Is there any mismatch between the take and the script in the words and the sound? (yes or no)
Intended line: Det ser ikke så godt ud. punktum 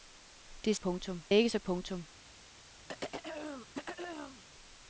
yes